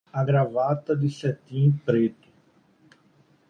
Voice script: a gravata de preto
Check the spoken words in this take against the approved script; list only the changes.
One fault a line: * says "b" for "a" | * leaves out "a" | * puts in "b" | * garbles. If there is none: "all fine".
* puts in "cetim"